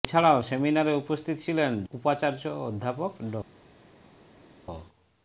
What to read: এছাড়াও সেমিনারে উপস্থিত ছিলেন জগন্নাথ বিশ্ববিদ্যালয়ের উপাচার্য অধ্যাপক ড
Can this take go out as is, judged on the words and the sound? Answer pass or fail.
fail